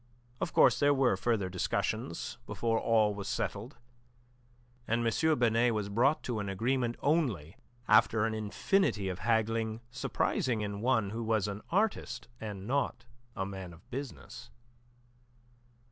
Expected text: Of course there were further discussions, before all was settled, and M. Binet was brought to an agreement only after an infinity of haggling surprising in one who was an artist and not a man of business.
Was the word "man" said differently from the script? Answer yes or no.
no